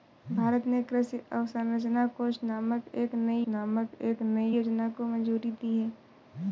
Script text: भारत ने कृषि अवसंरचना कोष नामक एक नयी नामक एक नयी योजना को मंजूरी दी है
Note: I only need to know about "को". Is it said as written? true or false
true